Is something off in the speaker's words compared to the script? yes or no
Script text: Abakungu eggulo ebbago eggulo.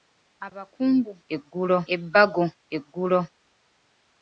no